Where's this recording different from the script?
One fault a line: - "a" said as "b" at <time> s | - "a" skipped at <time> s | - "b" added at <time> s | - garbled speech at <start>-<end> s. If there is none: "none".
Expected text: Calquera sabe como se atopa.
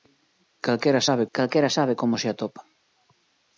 - "calquera sabe" added at 1.4 s